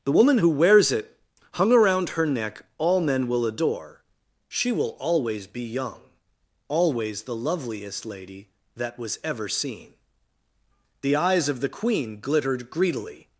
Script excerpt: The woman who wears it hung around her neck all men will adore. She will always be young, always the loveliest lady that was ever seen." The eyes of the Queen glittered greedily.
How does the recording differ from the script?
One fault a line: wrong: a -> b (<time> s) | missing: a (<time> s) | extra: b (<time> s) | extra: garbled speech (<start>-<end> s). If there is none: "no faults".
no faults